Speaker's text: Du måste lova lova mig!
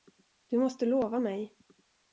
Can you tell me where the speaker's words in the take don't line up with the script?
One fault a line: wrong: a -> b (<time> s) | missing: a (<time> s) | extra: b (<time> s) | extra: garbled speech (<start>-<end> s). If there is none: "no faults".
missing: lova (1.2 s)